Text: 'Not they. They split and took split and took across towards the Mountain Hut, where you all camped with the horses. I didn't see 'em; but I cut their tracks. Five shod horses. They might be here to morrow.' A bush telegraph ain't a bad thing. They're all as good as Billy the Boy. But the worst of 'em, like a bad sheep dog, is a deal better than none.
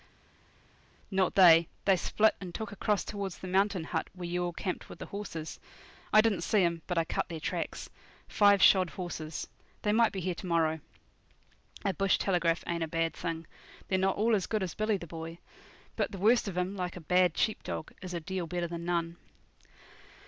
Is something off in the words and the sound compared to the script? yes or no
yes